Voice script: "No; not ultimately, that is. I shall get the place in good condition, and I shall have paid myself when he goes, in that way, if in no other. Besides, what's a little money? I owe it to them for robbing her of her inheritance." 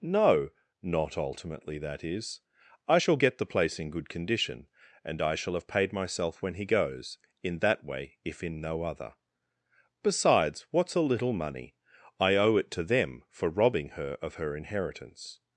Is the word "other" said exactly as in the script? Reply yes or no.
yes